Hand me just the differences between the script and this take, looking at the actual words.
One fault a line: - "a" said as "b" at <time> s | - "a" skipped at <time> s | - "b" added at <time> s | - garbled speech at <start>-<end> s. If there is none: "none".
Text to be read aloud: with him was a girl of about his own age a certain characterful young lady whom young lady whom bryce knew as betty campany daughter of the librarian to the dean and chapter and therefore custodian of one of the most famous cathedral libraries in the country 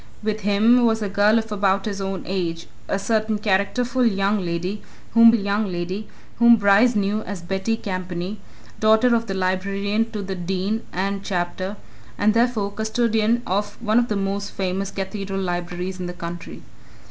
none